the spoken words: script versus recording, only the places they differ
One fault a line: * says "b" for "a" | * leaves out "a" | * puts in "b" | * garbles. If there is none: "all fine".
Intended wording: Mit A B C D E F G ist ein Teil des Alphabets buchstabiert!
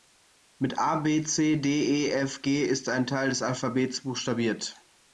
all fine